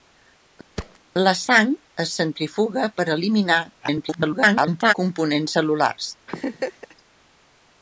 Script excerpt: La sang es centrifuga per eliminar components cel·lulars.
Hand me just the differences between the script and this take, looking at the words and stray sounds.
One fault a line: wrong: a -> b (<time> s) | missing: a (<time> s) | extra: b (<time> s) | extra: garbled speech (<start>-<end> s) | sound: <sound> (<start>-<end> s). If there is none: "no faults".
sound: thud (0.8-1.0 s)
extra: garbled speech (3.8-4.9 s)
sound: laugh (6.3-7.0 s)